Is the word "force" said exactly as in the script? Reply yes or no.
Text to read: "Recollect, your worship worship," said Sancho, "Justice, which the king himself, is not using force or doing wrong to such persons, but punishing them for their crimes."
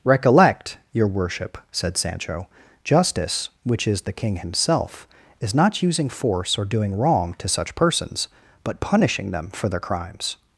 yes